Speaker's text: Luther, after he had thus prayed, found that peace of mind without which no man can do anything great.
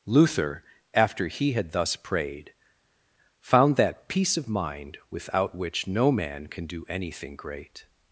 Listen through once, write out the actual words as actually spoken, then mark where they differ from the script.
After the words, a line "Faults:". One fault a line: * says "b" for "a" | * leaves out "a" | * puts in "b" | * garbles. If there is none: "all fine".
Luther, after he had thus prayed, found that peace of mind without which no man can do anything great.
Faults:
all fine